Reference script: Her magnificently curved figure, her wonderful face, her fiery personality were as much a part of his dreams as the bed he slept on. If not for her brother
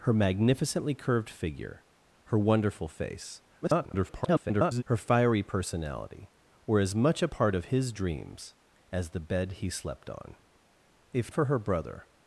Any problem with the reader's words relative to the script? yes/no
yes